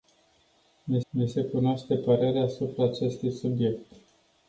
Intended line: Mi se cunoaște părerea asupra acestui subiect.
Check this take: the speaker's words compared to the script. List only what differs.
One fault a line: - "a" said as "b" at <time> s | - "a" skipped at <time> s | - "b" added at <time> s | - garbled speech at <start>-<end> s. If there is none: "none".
- "mi" added at 1.1 s